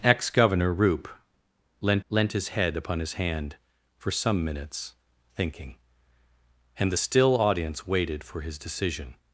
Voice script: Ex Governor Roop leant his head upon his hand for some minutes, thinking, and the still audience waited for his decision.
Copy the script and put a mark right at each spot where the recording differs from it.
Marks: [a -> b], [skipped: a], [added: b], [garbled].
Ex Governor Roop leant [added: leant] his head upon his hand for some minutes, thinking, and the still audience waited for his decision.